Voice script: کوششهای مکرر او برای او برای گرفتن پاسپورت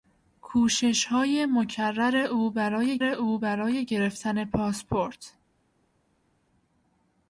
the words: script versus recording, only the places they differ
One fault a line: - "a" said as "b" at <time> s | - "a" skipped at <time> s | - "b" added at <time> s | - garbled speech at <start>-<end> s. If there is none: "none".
none